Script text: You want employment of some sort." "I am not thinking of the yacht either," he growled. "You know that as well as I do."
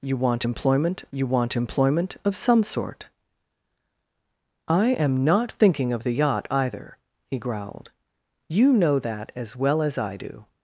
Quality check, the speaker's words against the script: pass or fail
fail